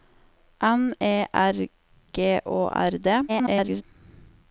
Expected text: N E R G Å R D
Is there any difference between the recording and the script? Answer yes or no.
yes